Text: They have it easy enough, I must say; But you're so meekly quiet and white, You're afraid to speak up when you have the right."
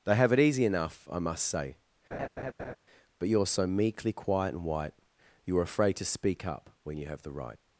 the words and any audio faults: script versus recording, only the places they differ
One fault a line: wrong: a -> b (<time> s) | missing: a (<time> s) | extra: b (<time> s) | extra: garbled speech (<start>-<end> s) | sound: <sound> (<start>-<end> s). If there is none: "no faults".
sound: laugh (2.1-2.8 s)